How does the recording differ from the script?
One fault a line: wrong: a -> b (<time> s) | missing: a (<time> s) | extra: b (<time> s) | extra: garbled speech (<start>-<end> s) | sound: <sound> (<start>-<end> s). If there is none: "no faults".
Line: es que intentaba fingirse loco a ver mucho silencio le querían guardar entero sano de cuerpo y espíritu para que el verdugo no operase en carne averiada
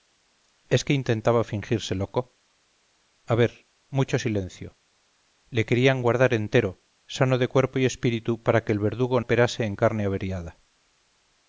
missing: no (9.2 s)